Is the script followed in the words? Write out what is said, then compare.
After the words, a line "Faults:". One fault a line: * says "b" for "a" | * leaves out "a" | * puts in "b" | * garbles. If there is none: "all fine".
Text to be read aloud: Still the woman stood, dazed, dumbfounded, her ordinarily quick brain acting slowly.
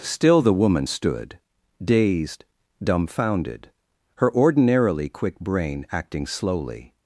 Still the woman stood, dazed, dumbfounded, her ordinarily quick brain acting slowly.
Faults:
all fine